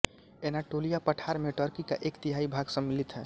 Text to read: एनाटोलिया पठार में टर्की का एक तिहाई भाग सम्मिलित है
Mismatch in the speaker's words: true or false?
false